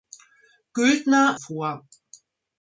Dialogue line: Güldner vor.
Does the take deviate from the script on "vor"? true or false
false